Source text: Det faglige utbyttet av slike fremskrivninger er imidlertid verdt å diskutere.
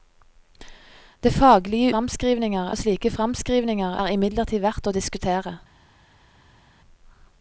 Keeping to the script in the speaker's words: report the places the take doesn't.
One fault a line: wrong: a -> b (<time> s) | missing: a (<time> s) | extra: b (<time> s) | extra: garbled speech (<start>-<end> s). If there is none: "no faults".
wrong: utbyttet -> fremskrivninger (1.9 s)